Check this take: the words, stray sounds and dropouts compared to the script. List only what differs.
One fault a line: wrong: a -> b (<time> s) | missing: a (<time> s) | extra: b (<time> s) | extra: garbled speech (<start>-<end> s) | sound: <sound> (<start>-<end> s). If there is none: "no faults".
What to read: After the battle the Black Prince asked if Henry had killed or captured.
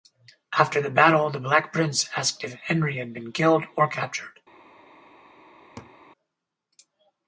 extra: been (3.1 s)
sound: laugh (5.8-5.9 s)